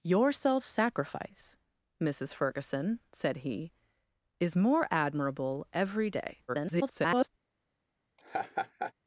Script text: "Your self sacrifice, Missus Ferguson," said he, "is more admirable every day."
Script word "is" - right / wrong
right